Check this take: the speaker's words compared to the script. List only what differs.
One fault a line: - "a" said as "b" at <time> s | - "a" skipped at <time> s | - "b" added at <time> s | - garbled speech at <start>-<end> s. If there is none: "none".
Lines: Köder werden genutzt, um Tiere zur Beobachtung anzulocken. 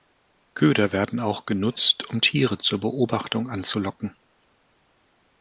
- "auch" added at 1.2 s